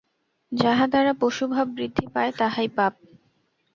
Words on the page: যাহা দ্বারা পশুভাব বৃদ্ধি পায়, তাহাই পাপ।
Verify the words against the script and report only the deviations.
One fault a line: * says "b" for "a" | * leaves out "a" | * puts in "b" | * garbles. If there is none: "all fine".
all fine